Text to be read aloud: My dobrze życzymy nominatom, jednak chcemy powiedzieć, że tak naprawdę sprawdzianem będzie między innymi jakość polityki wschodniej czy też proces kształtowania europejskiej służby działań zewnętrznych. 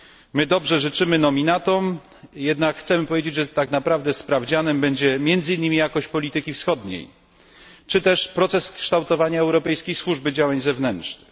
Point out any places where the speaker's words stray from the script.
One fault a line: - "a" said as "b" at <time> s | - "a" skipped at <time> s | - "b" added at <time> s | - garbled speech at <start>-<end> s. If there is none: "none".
none